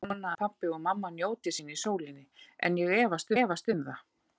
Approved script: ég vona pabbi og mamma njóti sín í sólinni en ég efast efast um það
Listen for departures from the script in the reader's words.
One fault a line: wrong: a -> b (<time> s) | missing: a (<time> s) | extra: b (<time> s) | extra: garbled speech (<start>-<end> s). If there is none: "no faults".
no faults